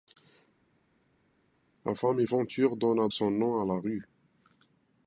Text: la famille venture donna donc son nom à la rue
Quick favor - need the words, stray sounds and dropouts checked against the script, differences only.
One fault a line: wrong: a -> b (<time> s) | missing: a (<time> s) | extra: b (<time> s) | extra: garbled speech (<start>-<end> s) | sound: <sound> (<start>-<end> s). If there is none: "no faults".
missing: donc (3.1 s)